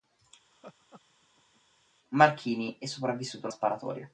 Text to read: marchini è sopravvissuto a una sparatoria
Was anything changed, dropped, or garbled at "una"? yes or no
yes